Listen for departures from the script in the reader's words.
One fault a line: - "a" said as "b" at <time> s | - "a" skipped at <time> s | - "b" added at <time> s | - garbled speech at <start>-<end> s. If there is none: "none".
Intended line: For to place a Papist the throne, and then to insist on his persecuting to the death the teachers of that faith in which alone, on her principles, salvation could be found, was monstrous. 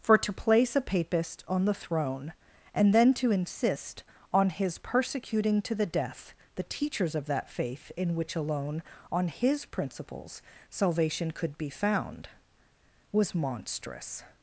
- "on" added at 1.5 s
- "her" said as "his" at 9.3 s